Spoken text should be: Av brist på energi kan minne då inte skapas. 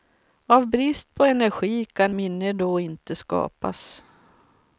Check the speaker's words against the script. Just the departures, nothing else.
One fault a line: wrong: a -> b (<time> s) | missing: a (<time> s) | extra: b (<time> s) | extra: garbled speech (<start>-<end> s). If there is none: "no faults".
no faults